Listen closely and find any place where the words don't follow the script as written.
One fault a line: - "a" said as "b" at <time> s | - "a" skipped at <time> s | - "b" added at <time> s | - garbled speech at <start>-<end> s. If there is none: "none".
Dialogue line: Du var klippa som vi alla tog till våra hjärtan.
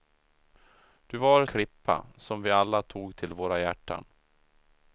none